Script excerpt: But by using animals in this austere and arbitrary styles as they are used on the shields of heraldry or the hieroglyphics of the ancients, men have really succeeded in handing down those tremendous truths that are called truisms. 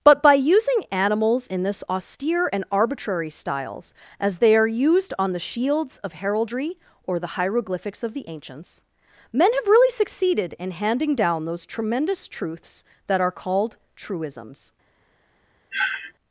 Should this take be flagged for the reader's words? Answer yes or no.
no